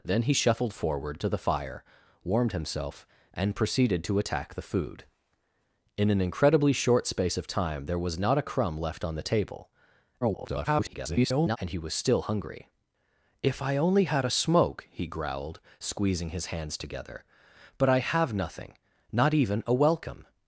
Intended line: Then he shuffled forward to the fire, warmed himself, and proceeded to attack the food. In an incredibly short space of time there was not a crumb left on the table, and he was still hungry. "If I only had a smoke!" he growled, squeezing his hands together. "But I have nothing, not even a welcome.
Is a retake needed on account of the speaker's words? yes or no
yes